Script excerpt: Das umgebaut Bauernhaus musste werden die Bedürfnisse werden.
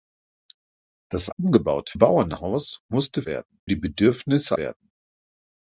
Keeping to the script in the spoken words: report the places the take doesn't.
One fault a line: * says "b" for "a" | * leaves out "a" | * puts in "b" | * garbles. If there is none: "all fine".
all fine